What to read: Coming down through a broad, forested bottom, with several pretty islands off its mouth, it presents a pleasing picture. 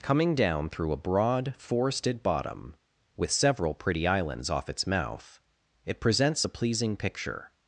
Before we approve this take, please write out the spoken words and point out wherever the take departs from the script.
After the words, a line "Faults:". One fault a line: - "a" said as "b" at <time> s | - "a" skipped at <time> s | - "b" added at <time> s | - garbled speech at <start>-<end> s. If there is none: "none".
Coming down through a broad, forested bottom, with several pretty islands off its mouth, it presents a pleasing picture.
Faults:
none